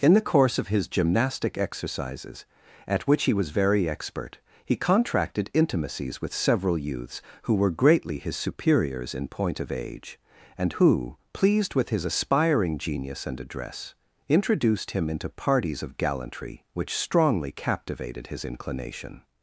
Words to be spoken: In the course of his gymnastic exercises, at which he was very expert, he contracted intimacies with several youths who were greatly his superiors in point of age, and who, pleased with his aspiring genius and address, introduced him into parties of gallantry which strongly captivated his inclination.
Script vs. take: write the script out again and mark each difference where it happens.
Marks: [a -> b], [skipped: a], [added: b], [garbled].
In the course of his gymnastic exercises, at which he was very expert, he contracted intimacies with several youths who were greatly his superiors in point of age, and who, pleased with his aspiring genius and address, introduced him into parties of gallantry which strongly captivated his inclination.